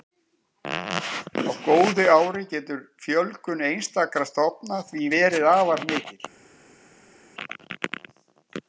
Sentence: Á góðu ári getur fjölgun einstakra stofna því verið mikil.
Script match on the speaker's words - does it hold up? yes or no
no